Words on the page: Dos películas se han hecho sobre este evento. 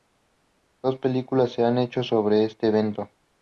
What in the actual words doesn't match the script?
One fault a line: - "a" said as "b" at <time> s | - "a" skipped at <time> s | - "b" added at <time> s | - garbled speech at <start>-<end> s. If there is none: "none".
none